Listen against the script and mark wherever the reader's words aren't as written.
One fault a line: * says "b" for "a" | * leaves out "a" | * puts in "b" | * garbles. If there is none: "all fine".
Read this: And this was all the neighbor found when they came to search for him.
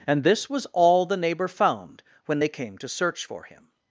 all fine